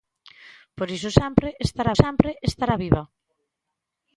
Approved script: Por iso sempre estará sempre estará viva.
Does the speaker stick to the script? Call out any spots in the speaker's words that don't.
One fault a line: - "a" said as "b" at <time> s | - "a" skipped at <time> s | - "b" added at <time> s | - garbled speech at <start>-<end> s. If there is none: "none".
none